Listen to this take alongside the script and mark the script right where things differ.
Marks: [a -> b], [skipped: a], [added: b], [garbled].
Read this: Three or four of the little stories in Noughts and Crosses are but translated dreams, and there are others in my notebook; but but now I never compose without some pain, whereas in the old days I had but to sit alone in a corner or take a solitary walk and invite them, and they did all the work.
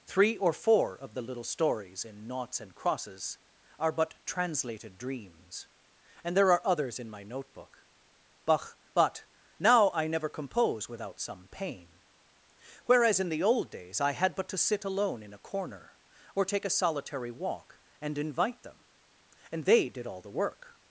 Three or four of the little stories in Noughts and Crosses are but translated dreams, and there are others in my notebook; but but now I never compose without some pain, whereas in the old days I had but to sit alone in a corner or take a solitary walk and invite them, and they did all the work.